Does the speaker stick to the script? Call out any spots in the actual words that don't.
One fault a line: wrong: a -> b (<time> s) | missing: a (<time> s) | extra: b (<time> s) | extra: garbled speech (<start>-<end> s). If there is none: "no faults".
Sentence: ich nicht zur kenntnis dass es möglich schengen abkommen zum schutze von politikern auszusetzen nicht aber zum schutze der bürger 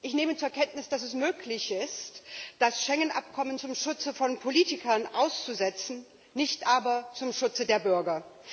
wrong: nicht -> nehme (0.1 s)
extra: ist das (1.7 s)